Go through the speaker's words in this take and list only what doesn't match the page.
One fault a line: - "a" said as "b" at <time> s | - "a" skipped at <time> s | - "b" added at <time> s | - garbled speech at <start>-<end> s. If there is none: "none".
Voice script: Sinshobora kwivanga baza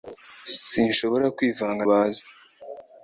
none